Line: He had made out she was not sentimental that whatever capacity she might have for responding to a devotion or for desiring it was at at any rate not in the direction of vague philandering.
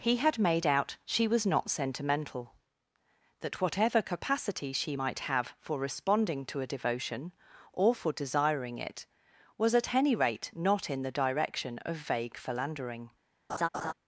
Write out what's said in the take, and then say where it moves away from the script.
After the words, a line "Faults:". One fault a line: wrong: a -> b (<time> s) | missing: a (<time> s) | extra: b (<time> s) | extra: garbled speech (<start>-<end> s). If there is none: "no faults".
He had made out she was not sentimental that whatever capacity she might have for responding to a devotion or for desiring it was at any rate not in the direction of vague philandering.
Faults:
missing: at (9.9 s)